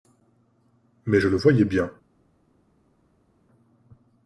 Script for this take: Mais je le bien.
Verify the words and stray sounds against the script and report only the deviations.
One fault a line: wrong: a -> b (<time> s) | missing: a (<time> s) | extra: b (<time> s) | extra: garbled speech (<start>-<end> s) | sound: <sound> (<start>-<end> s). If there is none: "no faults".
extra: voyais (1.4 s)